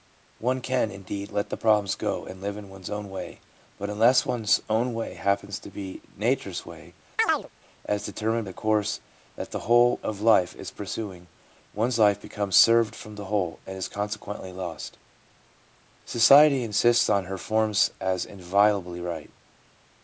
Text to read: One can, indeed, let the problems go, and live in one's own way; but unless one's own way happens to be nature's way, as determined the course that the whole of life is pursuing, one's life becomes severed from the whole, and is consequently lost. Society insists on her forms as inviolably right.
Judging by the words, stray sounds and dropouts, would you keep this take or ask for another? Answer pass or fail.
fail